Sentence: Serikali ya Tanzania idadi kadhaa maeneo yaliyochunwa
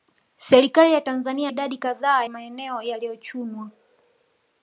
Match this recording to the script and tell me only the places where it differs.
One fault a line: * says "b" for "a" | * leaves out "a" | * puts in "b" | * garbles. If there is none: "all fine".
all fine